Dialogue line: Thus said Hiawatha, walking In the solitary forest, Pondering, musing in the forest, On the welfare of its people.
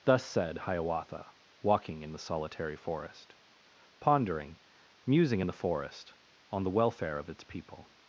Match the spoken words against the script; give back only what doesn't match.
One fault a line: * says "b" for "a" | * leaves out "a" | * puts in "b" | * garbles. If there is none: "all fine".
all fine